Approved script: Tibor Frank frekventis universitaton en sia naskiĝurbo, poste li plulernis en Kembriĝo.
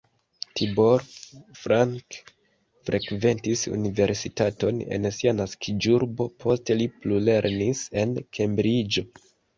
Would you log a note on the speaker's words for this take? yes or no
no